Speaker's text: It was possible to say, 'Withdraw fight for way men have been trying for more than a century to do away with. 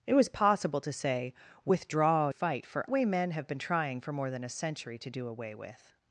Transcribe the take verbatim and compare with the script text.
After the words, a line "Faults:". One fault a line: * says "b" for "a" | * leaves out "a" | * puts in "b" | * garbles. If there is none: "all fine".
It was possible to say, 'Withdraw fight for way men have been trying for more than a century to do away with.
Faults:
all fine